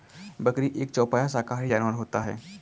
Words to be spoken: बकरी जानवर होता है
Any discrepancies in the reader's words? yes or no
yes